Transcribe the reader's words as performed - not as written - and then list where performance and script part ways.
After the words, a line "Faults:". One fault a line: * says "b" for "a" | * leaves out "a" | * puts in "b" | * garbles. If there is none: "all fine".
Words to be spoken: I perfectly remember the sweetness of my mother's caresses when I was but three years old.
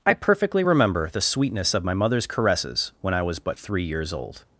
I perfectly remember the sweetness of my mother's caresses when I was but three years old.
Faults:
all fine